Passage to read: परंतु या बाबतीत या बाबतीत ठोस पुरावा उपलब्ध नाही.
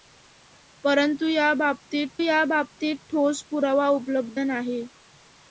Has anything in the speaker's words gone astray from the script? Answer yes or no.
no